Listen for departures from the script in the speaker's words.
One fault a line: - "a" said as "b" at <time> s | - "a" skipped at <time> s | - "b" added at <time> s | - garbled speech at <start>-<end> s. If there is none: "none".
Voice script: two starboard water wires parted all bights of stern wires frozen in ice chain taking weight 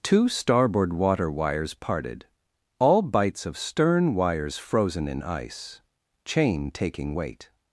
none